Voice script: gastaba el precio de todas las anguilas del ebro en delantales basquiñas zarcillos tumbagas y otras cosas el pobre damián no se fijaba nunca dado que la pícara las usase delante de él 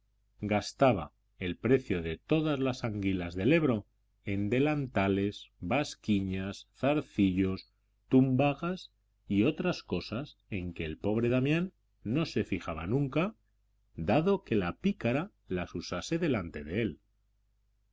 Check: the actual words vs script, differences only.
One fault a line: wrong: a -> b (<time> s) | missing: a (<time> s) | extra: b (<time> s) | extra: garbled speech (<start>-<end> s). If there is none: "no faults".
extra: en que (10.5 s)